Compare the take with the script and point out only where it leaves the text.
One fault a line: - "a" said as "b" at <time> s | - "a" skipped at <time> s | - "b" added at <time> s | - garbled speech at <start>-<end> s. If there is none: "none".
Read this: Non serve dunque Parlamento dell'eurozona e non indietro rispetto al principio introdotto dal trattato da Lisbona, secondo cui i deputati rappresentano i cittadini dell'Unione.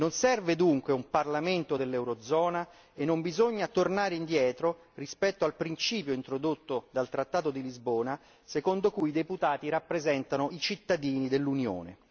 - "un" added at 0.9 s
- "bisogna tornare" added at 3.2 s
- "da" said as "di" at 7.5 s